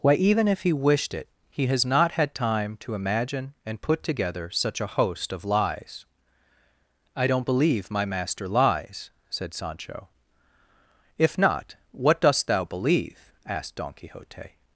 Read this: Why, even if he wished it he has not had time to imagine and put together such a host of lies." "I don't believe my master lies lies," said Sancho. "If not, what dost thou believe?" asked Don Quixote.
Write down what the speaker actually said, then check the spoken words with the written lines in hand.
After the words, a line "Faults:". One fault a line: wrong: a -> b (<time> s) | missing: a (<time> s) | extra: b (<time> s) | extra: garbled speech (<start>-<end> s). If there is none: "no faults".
Why, even if he wished it he has not had time to imagine and put together such a host of lies." "I don't believe my master lies," said Sancho. "If not, what dost thou believe?" asked Don Quixote.
Faults:
missing: lies (9.1 s)